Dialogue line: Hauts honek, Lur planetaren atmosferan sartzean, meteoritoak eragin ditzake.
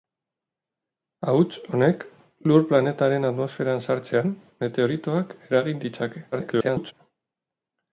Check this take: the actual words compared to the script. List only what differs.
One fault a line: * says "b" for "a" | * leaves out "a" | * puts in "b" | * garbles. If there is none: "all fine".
* garbles